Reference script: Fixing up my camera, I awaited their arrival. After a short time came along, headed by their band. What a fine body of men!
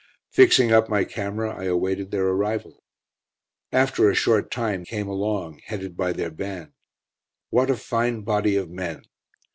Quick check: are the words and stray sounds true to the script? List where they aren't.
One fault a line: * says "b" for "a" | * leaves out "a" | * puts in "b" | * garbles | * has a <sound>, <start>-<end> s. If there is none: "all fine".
all fine